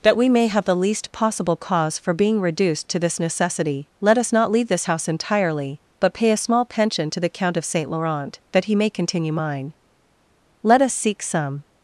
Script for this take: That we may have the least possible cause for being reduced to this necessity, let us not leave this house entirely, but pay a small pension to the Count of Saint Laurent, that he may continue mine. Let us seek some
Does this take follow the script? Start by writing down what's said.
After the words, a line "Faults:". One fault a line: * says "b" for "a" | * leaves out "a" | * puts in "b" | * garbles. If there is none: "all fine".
That we may have the least possible cause for being reduced to this necessity, let us not leave this house entirely, but pay a small pension to the Count of Saint Laurent, that he may continue mine. Let us seek some
Faults:
all fine